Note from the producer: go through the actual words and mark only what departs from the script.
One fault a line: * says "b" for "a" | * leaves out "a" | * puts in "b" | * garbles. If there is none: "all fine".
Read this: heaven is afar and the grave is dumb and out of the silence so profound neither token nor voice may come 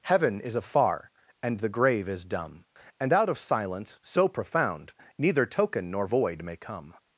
* leaves out "the"
* says "void" for "voice"